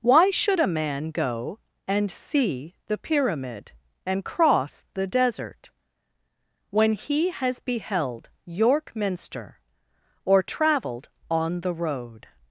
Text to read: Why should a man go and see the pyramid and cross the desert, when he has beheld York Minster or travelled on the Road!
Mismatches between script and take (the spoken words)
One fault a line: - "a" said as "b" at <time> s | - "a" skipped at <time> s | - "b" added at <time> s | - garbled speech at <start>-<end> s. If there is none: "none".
none